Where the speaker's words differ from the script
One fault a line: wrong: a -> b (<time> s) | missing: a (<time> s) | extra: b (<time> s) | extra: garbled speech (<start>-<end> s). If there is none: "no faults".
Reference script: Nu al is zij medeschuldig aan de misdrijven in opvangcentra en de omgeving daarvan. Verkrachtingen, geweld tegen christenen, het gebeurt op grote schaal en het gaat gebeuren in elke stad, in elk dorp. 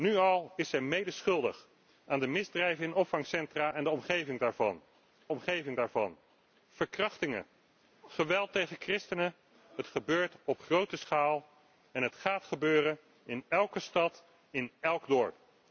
extra: omgeving daarvan (5.3 s)